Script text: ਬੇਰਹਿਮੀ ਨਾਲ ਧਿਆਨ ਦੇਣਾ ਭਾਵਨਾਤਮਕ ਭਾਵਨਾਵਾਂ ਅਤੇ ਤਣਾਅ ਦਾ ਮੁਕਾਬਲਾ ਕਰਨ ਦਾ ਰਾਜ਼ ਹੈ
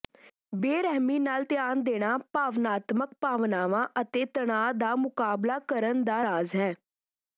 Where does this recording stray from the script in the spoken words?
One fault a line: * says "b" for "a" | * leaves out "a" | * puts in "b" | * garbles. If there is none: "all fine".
all fine